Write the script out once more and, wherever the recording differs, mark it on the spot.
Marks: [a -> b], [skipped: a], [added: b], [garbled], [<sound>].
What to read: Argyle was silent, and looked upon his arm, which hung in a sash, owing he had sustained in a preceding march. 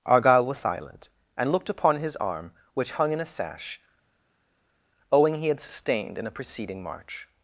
Argyle was silent, and looked upon his arm, which hung in a sash, owing he had sustained in a preceding march.